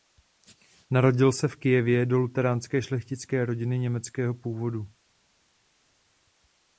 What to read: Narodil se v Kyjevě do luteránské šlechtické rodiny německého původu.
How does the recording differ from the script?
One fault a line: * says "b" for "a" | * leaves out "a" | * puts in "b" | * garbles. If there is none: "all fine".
all fine